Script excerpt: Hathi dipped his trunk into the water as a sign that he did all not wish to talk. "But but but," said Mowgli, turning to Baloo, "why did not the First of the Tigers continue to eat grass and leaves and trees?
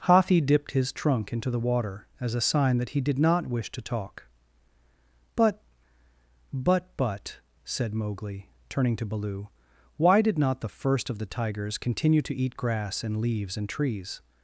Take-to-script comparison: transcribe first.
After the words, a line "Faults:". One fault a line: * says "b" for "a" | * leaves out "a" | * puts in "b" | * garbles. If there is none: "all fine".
Hathi dipped his trunk into the water as a sign that he did not wish to talk. "But but but," said Mowgli, turning to Baloo, "why did not the First of the Tigers continue to eat grass and leaves and trees?
Faults:
* leaves out "all"